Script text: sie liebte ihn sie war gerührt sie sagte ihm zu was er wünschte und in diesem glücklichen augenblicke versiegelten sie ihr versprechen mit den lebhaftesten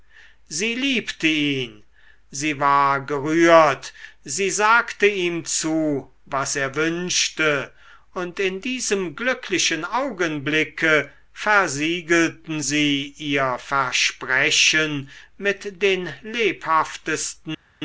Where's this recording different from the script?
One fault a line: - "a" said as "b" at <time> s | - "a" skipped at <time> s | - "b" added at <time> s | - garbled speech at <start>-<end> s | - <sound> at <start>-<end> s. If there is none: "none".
none